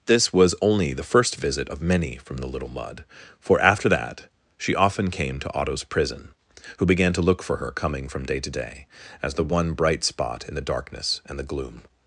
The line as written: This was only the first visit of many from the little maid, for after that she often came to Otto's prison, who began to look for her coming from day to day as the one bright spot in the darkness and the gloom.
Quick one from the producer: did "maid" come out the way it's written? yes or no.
no